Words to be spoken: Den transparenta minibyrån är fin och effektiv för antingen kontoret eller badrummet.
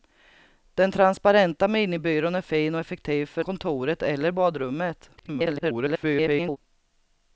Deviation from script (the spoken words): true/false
true